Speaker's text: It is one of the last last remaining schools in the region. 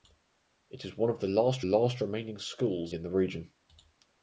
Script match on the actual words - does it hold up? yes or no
yes